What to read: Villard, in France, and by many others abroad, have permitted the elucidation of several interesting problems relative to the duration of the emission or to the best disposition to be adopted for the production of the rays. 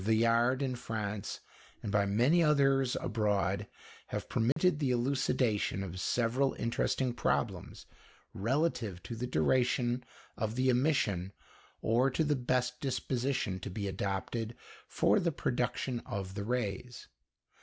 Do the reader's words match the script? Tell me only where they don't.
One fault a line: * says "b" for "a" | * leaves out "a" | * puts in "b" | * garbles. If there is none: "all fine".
all fine